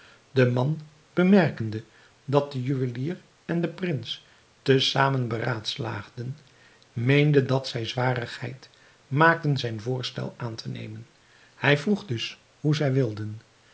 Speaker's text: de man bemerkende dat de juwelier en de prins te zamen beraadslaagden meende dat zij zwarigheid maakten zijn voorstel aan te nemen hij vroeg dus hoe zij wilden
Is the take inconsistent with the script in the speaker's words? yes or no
no